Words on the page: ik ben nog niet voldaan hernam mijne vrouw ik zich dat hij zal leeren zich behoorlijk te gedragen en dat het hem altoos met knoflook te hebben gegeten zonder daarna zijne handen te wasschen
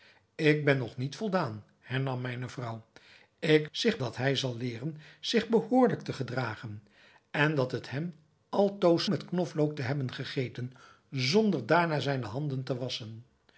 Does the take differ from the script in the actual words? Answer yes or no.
no